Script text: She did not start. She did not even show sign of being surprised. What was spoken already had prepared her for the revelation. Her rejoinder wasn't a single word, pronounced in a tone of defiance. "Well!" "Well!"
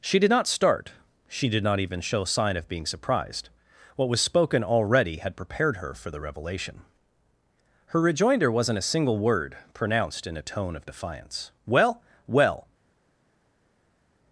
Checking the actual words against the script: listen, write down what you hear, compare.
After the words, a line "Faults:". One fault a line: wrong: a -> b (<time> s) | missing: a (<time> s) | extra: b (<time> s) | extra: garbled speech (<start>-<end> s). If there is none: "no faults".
She did not start. She did not even show sign of being surprised. What was spoken already had prepared her for the revelation. Her rejoinder wasn't a single word, pronounced in a tone of defiance. "Well!" "Well!"
Faults:
no faults